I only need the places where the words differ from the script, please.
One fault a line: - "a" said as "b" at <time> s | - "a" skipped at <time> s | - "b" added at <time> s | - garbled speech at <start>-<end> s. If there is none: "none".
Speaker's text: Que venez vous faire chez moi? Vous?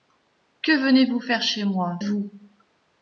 none